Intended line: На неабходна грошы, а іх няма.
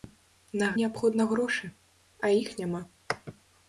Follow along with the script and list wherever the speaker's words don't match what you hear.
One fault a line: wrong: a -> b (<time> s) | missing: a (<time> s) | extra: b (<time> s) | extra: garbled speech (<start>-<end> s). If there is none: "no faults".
no faults